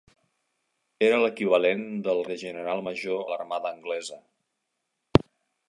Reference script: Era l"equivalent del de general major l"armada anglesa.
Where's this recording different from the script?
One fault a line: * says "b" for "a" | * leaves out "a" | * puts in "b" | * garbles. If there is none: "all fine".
all fine